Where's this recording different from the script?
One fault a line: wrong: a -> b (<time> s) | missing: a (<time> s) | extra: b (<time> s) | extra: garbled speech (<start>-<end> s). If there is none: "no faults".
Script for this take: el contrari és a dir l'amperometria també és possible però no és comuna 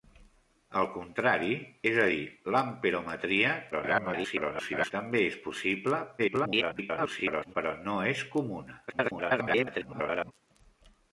extra: garbled speech (3.7-4.9 s)
extra: garbled speech (6.2-7.6 s)
extra: garbled speech (8.9-10.3 s)